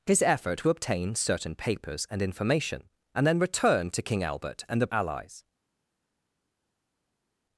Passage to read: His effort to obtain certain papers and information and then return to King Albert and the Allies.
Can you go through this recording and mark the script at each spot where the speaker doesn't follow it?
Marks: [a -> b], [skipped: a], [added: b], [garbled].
His effort to obtain certain papers and information and then return to King Albert and the Allies.